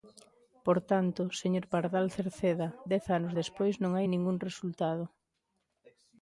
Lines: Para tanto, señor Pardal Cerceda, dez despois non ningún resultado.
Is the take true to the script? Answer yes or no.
no